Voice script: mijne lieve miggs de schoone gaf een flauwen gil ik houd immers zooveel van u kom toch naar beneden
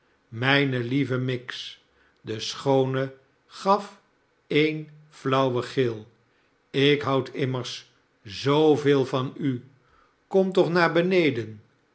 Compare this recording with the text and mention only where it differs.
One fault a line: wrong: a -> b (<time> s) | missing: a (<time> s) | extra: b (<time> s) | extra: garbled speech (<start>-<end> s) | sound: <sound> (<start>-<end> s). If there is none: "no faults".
no faults